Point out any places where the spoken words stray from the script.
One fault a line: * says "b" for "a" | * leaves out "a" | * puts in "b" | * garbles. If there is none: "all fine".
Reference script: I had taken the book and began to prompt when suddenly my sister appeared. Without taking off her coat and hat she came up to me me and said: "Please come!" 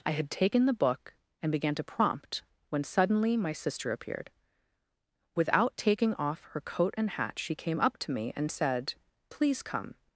* leaves out "me"